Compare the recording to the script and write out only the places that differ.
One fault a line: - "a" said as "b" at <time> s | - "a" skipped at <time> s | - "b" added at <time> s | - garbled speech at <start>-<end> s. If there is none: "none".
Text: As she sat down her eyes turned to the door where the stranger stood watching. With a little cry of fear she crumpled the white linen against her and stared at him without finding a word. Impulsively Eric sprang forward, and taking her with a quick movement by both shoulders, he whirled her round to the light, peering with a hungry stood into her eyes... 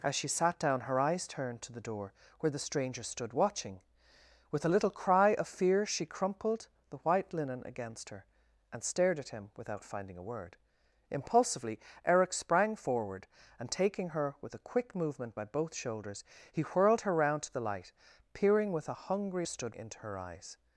none